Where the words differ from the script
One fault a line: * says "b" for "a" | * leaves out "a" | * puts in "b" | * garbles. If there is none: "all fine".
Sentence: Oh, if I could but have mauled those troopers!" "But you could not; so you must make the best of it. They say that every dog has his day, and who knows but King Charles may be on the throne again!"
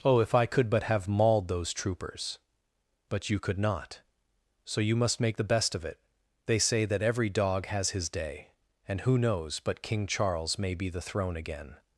* leaves out "on"